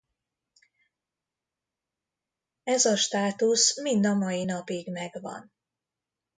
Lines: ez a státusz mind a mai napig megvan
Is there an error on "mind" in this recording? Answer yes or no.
no